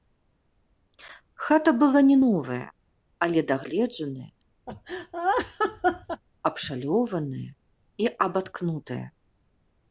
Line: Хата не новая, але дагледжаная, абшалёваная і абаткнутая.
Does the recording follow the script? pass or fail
fail